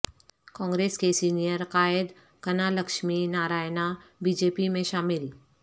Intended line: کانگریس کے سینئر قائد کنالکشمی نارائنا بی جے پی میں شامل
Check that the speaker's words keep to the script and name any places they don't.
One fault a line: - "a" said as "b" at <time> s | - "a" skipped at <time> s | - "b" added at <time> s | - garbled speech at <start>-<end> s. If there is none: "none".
none